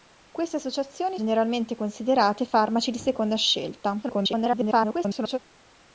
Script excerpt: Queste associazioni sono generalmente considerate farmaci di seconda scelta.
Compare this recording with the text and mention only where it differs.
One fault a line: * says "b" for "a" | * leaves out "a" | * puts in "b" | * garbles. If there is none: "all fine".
* leaves out "sono"
* garbles